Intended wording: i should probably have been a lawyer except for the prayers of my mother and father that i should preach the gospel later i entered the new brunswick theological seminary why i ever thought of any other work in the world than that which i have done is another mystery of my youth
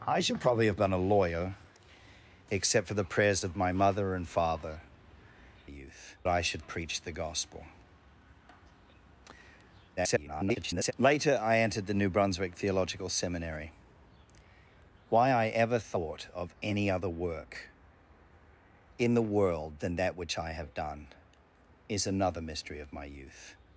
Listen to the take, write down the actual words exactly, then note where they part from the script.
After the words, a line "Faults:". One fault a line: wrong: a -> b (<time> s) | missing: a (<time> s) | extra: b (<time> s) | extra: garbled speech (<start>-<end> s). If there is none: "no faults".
i should probably have been a lawyer except for the prayers of my mother and father youth i should preach the gospel [garbled] later i entered the new brunswick theological seminary why i ever thought of any other work in the world than that which i have done is another mystery of my youth
Faults:
wrong: that -> youth (5.7 s)
extra: garbled speech (10.0-10.9 s)